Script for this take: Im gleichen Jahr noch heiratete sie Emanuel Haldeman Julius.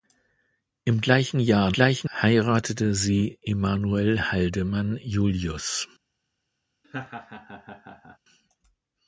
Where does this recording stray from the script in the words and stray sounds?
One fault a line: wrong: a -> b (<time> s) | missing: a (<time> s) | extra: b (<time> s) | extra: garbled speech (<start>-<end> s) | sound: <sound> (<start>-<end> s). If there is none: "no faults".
wrong: noch -> gleichen (1.7 s)
sound: laugh (6.8-8.2 s)